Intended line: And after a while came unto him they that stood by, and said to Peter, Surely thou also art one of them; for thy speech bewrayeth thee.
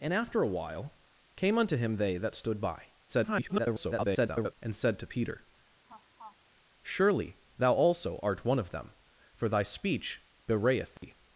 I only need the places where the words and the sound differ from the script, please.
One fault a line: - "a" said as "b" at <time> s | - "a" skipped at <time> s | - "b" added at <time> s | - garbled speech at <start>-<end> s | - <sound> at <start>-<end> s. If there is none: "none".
- garbled speech at 3.1-4.5 s
- laugh at 5.9-6.4 s
- dropout at 11.0-11.0 s